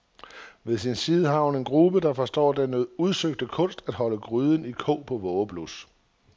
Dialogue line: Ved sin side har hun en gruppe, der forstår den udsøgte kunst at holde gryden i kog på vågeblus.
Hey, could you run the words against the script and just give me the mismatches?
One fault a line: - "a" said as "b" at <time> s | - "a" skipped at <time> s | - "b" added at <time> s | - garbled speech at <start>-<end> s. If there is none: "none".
none